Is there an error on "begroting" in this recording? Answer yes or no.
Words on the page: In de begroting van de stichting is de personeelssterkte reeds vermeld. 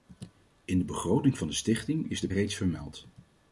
no